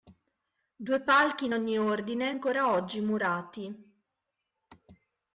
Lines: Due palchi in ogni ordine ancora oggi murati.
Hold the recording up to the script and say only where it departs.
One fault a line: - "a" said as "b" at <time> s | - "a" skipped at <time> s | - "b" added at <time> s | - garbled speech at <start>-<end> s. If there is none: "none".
none